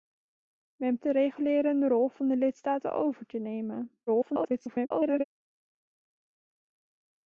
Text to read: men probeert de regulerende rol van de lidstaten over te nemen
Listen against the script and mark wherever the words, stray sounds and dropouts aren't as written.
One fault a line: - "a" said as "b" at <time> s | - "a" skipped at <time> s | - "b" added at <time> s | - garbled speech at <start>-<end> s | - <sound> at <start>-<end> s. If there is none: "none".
- "probeert" skipped at 1.0 s
- garbled speech at 4.1-5.2 s